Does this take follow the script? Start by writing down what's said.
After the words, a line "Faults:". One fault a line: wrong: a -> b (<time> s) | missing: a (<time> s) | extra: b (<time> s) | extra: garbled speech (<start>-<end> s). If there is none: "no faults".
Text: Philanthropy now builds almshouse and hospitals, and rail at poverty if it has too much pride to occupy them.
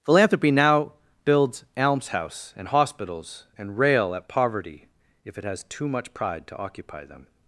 Philanthropy now builds almshouse and hospitals, and rail at poverty if it has too much pride to occupy them.
Faults:
no faults